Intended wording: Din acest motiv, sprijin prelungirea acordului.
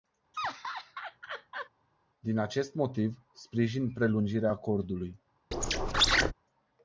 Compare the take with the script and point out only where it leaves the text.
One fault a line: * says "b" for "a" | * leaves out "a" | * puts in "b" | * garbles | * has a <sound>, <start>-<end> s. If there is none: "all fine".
* has a laugh, 0.3-1.7 s
* has a squeak, 5.5-6.3 s